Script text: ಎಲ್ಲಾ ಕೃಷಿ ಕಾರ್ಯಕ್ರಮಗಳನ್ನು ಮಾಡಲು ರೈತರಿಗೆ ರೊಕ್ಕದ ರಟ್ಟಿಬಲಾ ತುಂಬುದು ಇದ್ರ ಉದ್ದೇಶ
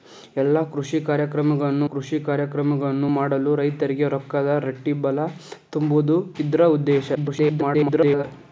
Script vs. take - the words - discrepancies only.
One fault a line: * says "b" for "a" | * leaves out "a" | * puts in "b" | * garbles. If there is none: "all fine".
* puts in "ಕೃಷಿ ಕಾರ್ಯಕ್ರಮಗಳನ್ನು"
* garbles